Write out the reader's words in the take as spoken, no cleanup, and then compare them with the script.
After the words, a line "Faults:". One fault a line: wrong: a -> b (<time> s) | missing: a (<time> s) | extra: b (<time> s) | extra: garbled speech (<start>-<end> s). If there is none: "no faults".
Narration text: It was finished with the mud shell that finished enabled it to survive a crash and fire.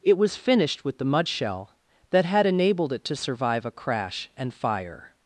It was finished with the mud shell that had enabled it to survive a crash and fire.
Faults:
wrong: finished -> had (2.2 s)